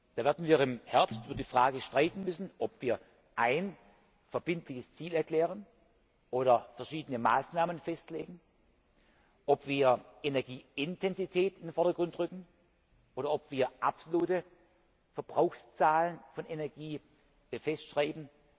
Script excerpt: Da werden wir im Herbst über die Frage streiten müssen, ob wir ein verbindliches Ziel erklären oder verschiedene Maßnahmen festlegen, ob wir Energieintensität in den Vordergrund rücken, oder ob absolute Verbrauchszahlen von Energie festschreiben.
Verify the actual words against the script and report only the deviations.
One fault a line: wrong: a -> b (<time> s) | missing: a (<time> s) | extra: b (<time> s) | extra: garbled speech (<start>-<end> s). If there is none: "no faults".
extra: wir (13.5 s)